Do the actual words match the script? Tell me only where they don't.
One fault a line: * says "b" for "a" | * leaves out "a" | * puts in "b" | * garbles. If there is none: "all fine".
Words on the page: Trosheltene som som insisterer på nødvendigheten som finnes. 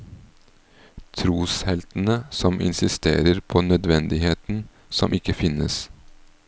* leaves out "som"
* puts in "ikke"